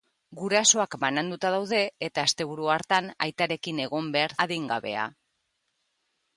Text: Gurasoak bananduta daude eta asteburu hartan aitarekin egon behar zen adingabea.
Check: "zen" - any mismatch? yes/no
yes